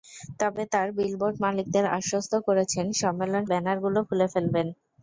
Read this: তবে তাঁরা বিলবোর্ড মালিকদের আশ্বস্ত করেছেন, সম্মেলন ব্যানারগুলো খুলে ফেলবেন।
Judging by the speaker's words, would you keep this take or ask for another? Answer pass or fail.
pass